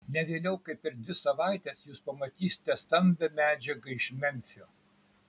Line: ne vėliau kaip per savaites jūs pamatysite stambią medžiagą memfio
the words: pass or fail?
fail